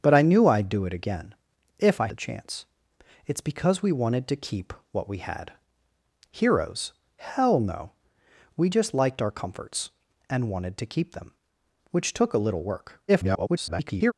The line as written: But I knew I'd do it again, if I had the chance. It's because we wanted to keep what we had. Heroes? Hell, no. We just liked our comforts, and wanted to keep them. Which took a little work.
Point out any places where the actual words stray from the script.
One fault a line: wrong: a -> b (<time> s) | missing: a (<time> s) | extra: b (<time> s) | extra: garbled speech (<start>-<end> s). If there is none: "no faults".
missing: had (2.1 s)
extra: garbled speech (13.1-14.1 s)